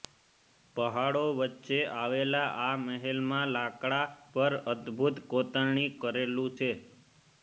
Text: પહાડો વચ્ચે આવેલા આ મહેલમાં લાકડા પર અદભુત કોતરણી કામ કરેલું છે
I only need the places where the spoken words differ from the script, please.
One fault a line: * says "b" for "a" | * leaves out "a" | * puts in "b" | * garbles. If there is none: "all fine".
* leaves out "કામ"